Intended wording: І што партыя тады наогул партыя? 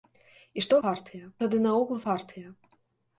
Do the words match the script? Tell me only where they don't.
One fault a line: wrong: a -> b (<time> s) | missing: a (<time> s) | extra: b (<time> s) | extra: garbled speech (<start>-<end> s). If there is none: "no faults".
no faults